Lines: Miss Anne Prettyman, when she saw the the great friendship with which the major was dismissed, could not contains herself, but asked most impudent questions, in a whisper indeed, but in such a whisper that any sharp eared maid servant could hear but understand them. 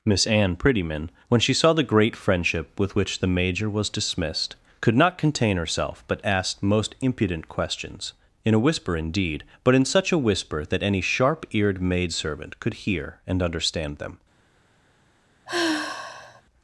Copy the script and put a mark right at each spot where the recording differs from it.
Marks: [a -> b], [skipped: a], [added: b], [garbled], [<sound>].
Miss Anne Prettyman, when she saw the [skipped: the] great friendship with which the major was dismissed, could not [contains -> contain] herself, but asked most impudent questions, in a whisper indeed, but in such a whisper that any sharp eared maid servant could hear [but -> and] understand them. [sigh]